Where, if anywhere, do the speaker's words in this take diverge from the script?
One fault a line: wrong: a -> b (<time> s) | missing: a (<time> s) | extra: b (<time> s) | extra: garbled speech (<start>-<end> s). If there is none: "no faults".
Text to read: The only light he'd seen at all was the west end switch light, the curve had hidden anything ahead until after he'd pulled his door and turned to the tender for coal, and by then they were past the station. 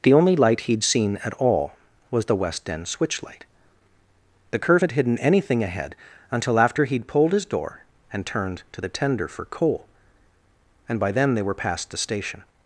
no faults